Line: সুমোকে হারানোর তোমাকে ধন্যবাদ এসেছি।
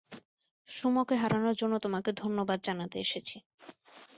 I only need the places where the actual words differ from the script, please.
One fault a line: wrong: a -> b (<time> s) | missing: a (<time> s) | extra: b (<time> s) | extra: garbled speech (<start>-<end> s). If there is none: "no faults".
extra: জন্য (1.6 s)
extra: জানাতে (2.7 s)